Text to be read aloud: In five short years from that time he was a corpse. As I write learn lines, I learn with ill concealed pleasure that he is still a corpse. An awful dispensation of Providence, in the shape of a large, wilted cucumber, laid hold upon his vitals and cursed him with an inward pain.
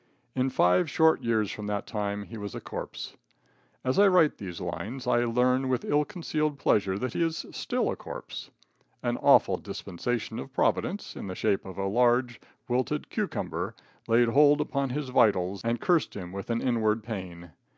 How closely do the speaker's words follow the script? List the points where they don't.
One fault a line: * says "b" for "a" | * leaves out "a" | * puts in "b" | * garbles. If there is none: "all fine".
* says "these" for "learn"